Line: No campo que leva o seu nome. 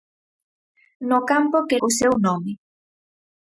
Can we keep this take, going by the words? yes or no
no